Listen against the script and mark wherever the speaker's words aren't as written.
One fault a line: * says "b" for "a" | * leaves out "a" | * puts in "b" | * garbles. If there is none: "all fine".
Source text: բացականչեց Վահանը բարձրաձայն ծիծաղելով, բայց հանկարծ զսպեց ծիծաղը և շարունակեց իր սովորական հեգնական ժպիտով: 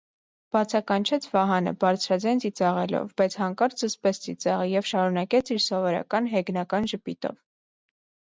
all fine